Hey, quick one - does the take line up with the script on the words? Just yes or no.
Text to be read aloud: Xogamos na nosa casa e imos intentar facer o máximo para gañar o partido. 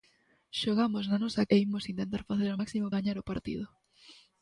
no